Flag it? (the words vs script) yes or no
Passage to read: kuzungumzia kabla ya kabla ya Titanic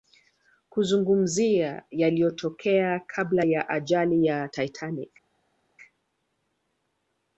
yes